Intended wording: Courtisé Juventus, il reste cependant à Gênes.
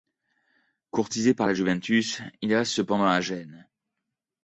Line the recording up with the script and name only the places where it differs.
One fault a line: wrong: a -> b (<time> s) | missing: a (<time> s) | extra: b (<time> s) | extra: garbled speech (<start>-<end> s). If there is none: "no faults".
extra: par la (1.4 s)